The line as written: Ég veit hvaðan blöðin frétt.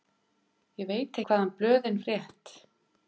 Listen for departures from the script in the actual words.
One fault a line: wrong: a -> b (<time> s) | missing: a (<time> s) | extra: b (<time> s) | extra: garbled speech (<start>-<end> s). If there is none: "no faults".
no faults